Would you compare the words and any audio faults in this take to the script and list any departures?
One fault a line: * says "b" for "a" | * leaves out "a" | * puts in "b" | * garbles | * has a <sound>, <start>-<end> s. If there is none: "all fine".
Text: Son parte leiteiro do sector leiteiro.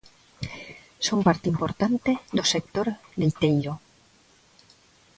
* says "importante" for "leiteiro"